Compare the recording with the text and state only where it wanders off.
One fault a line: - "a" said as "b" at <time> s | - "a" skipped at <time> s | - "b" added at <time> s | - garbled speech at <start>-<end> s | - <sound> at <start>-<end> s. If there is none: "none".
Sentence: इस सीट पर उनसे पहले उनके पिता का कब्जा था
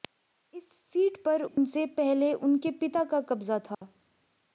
- dropout at 1.5-1.6 s
- dropout at 3.7-3.8 s